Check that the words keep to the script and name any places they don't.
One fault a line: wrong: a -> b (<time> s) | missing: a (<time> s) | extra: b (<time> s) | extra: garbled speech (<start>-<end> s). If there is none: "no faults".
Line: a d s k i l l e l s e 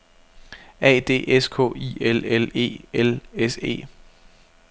no faults